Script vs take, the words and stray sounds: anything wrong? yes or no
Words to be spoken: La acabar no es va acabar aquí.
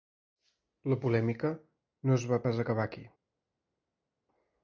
yes